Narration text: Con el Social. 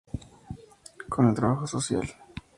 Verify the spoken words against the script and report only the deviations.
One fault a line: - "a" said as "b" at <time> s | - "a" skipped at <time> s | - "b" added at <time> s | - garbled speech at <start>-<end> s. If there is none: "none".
- "Trabajo" added at 1.3 s